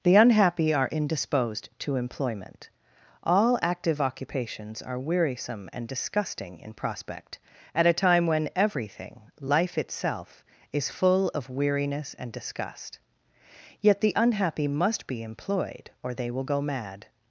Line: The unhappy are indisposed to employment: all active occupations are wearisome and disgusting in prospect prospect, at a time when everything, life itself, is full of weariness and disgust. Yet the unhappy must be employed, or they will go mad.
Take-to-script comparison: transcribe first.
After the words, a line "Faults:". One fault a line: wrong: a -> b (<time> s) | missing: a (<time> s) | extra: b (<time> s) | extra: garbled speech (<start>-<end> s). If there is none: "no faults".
The unhappy are indisposed to employment: all active occupations are wearisome and disgusting in prospect, at a time when everything, life itself, is full of weariness and disgust. Yet the unhappy must be employed, or they will go mad.
Faults:
missing: prospect (7.4 s)